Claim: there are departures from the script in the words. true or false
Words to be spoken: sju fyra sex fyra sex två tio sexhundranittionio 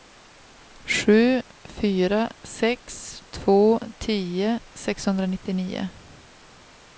true